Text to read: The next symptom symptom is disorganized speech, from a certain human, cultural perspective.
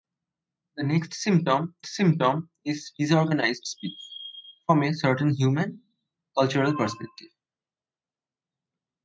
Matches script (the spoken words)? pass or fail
pass